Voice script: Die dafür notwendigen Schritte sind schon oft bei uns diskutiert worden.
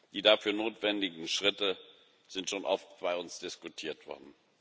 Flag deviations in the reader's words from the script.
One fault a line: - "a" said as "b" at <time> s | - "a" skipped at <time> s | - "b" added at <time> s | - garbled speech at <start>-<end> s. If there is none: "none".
none